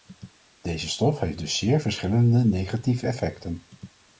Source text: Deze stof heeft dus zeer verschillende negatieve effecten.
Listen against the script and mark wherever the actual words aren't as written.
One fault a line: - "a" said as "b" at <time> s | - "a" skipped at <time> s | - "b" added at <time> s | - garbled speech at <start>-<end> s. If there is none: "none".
none